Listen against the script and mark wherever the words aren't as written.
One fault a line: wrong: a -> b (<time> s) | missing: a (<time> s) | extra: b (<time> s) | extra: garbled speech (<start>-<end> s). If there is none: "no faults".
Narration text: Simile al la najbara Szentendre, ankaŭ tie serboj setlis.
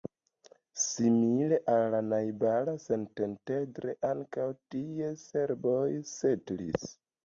no faults